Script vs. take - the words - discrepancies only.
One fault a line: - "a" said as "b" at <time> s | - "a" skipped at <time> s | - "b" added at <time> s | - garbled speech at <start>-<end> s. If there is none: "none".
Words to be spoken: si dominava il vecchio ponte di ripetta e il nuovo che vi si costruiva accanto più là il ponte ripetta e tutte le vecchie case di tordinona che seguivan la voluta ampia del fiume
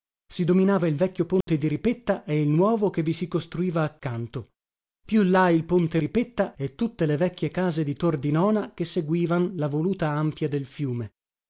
none